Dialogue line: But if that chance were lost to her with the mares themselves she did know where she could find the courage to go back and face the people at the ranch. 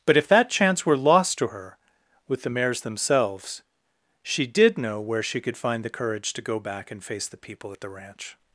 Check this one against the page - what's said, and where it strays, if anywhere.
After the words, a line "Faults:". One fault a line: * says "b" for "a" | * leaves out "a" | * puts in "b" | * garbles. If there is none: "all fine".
But if that chance were lost to her with the mares themselves she did know where she could find the courage to go back and face the people at the ranch.
Faults:
all fine